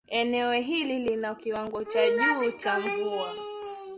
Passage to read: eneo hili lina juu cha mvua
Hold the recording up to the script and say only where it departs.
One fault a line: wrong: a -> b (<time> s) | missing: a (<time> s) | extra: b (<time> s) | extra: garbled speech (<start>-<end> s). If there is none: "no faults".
extra: kiwango cha (1.4 s)